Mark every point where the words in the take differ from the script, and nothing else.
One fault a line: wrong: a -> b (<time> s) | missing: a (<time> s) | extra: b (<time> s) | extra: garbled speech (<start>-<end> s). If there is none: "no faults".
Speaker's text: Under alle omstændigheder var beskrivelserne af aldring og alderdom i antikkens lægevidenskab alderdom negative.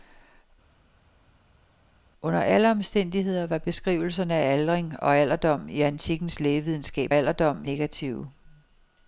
no faults